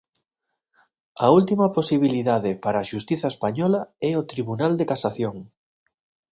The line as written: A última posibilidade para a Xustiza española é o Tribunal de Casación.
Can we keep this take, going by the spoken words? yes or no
yes